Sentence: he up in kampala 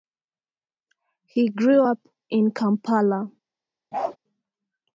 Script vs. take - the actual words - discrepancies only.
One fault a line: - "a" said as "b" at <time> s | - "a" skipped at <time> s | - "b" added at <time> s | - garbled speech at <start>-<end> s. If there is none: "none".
- "grew" added at 1.5 s